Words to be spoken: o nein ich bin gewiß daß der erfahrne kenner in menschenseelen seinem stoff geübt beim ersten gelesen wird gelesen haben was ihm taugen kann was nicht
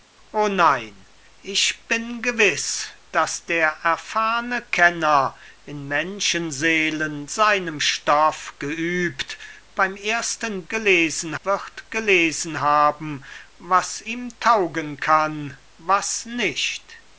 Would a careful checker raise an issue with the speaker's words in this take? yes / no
no